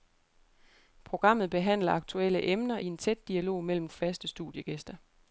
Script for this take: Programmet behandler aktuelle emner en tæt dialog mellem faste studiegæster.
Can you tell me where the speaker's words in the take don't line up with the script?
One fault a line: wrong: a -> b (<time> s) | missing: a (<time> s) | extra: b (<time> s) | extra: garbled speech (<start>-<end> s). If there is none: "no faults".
no faults